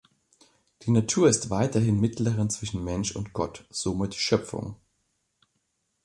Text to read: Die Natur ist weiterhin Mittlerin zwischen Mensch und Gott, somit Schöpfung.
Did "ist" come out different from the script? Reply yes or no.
no